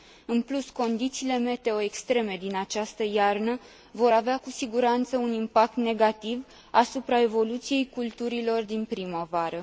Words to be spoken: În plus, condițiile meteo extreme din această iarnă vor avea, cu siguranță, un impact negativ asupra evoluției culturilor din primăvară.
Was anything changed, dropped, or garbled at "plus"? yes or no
no